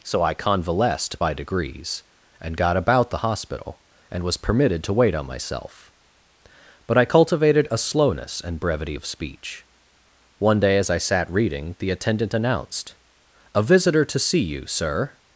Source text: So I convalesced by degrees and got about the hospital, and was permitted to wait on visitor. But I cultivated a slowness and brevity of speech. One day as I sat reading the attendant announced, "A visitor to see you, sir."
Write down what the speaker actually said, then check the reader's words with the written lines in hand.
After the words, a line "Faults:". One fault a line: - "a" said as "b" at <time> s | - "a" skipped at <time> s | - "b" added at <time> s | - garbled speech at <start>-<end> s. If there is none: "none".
So I convalesced by degrees and got about the hospital, and was permitted to wait on myself. But I cultivated a slowness and brevity of speech. One day as I sat reading the attendant announced, "A visitor to see you, sir."
Faults:
- "visitor" said as "myself" at 5.3 s